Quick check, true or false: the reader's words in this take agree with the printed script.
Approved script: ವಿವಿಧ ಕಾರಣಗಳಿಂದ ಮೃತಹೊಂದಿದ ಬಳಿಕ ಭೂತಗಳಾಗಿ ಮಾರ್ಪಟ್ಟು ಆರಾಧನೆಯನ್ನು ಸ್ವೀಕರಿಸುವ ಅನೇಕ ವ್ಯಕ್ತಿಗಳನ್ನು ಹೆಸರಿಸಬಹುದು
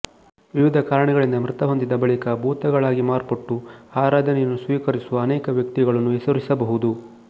true